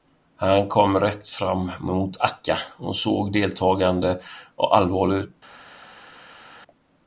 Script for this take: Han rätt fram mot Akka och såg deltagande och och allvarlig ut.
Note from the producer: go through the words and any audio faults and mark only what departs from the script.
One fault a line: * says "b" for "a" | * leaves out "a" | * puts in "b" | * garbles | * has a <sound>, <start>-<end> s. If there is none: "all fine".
* puts in "kom"
* leaves out "och"